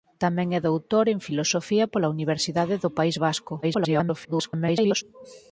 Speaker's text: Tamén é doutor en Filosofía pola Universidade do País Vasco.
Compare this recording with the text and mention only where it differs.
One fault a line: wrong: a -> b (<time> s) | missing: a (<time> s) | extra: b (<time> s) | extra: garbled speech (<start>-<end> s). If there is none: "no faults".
extra: garbled speech (3.6-5.0 s)